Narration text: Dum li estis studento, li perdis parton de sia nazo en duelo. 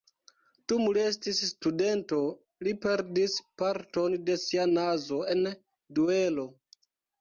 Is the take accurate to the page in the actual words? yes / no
yes